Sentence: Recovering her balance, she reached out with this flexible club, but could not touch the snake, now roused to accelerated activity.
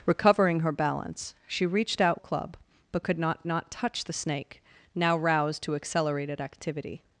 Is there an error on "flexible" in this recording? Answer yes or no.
yes